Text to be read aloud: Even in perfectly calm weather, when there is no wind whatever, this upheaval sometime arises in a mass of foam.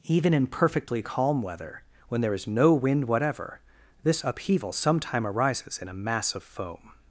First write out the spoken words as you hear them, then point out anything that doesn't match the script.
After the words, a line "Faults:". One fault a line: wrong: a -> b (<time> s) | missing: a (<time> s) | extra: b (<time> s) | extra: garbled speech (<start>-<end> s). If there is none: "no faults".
Even in perfectly calm weather, when there is no wind whatever, this upheaval sometime arises in a mass of foam.
Faults:
no faults